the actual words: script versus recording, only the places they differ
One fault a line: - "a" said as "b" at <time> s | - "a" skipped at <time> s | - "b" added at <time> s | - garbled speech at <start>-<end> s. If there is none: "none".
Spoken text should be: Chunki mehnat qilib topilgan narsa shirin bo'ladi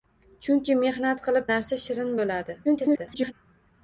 - "topilgan" skipped at 1.5 s
- garbled speech at 2.6-3.3 s